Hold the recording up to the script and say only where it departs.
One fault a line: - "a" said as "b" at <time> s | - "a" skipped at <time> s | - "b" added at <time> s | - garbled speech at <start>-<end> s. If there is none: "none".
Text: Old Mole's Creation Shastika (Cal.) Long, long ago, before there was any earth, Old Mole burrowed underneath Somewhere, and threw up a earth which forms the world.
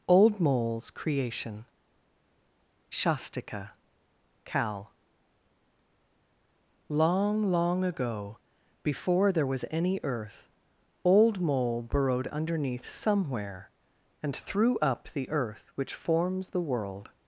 - "a" said as "the" at 15.1 s